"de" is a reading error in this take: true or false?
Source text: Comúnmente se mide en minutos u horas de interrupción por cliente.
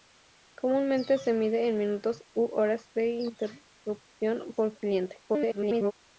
false